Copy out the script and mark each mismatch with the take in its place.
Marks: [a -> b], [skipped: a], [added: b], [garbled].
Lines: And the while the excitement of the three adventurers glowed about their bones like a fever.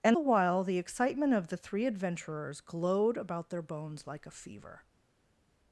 And the while the excitement of the three adventurers glowed about their bones like a fever.